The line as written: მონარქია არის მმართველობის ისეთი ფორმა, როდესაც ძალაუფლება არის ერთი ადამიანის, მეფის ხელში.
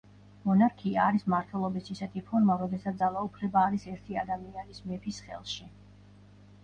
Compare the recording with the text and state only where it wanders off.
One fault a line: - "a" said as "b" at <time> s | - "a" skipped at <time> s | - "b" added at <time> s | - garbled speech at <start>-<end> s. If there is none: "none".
none